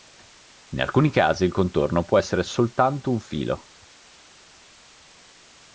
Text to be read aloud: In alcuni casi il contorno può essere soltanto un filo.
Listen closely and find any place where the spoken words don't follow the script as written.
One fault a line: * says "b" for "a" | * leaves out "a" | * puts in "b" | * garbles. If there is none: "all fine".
all fine